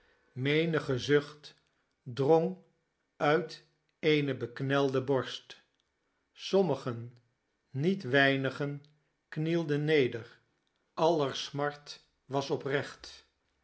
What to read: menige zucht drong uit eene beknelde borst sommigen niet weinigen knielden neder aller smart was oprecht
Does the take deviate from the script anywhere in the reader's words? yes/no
no